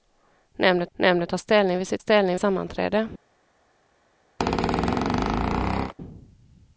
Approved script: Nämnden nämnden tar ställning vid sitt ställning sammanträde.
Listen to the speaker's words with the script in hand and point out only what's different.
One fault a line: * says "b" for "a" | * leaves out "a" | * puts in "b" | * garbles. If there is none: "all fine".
all fine